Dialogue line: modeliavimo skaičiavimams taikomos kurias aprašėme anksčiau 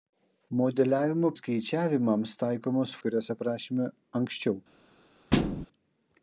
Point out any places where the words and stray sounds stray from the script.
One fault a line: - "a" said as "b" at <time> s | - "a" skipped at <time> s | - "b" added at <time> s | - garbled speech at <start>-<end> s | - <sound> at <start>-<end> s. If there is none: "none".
- thud at 5.3-5.7 s